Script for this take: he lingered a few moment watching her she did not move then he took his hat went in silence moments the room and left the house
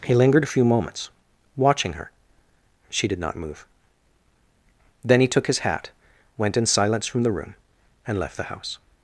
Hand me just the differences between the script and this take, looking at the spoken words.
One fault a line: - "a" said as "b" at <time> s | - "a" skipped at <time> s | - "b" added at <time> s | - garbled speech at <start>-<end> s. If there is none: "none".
- "moment" said as "moments" at 0.7 s
- "moments" said as "from" at 7.1 s